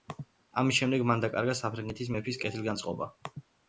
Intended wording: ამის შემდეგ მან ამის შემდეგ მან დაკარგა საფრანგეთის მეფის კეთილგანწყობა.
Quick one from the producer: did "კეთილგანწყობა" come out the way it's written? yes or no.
yes